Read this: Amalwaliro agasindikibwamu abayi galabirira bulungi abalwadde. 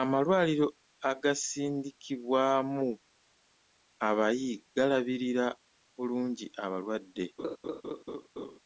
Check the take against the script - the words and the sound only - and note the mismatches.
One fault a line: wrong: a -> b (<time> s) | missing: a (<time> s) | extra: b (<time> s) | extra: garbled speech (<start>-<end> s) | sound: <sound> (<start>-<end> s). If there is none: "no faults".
sound: laugh (7.4-8.6 s)